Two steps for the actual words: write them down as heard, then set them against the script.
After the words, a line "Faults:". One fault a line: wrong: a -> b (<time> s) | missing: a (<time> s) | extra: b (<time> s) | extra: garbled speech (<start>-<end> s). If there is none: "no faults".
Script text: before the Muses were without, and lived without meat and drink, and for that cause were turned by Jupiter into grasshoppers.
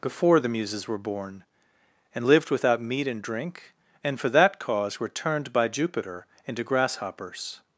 before the Muses were born, and lived without meat and drink, and for that cause were turned by Jupiter into grasshoppers.
Faults:
wrong: without -> born (1.0 s)